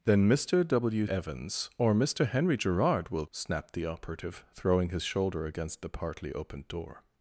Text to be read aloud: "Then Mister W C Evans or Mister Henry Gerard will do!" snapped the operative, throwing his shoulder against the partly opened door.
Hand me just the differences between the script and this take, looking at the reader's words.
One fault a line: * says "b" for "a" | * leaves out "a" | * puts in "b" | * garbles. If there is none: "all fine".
* leaves out "C"
* leaves out "do"